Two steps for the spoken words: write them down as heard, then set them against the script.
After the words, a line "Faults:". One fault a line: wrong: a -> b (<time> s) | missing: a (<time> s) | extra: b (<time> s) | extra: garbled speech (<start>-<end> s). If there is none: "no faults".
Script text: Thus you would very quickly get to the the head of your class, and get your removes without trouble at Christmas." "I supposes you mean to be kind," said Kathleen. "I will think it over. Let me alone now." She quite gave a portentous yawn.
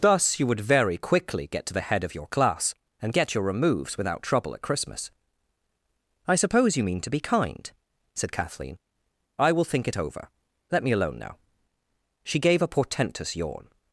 Thus you would very quickly get to the head of your class, and get your removes without trouble at Christmas." "I suppose you mean to be kind," said Kathleen. "I will think it over. Let me alone now." She gave a portentous yawn.
Faults:
missing: the (1.9 s)
wrong: supposes -> suppose (6.4 s)
missing: quite (12.4 s)